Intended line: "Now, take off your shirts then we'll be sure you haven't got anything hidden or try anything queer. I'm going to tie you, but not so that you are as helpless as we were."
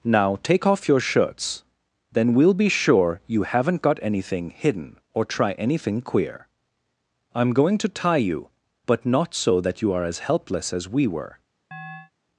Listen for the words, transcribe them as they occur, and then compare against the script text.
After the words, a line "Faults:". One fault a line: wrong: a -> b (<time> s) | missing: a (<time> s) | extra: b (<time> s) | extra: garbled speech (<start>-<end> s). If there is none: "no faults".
"Now, take off your shirts then we'll be sure you haven't got anything hidden or try anything queer. I'm going to tie you, but not so that you are as helpless as we were."
Faults:
no faults